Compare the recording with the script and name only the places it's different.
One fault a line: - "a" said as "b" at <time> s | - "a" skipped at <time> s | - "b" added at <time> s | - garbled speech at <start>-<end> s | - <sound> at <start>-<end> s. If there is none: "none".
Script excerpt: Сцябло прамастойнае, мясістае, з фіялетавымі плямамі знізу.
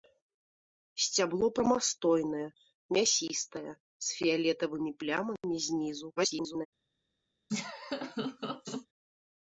- garbled speech at 6.2-6.7 s
- laugh at 7.5-8.9 s